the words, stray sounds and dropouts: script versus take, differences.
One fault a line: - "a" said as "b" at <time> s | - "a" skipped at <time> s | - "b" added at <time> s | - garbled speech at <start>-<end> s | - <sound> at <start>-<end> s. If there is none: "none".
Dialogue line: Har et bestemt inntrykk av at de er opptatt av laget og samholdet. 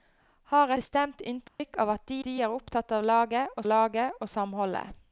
- "et" skipped at 0.7 s
- dropout at 1.5-1.6 s
- "de" added at 2.3 s
- "laget og" added at 3.7 s